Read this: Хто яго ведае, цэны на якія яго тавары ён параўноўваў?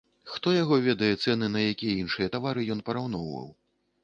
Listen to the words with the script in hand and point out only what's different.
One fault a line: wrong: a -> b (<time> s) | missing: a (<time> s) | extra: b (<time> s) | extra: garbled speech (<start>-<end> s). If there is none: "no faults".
wrong: яго -> іншыя (2.0 s)